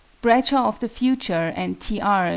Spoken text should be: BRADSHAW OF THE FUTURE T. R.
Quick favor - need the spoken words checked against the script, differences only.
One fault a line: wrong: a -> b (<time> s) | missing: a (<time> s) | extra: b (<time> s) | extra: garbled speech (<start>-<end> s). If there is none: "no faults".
extra: and (1.6 s)